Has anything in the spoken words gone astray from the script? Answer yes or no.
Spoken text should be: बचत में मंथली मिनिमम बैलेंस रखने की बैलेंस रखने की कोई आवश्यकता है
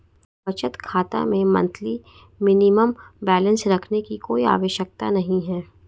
yes